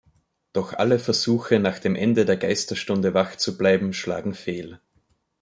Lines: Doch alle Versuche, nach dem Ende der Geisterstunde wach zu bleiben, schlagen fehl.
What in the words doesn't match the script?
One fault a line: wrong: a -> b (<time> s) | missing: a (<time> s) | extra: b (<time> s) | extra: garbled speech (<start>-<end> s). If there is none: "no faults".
no faults